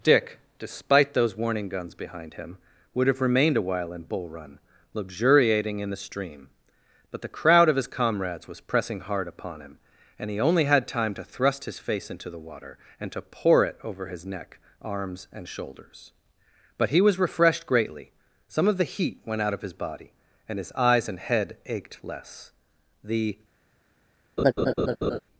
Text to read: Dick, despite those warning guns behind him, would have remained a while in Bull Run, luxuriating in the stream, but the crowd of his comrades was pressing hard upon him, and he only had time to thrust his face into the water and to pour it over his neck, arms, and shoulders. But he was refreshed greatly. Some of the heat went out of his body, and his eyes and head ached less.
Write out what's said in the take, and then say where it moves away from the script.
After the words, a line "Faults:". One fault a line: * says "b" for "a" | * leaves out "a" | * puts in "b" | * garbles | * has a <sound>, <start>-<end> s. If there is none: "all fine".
Dick, despite those warning guns behind him, would have remained a while in Bull Run, luxuriating in the stream, but the crowd of his comrades was pressing hard upon him, and he only had time to thrust his face into the water and to pour it over his neck, arms, and shoulders. But he was refreshed greatly. Some of the heat went out of his body, and his eyes and head ached less. The
Faults:
* puts in "The"
* has a laugh, 24.4-25.2 s